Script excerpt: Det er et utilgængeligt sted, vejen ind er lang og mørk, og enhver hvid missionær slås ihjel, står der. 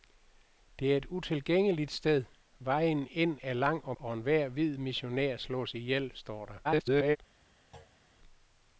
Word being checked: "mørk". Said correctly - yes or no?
no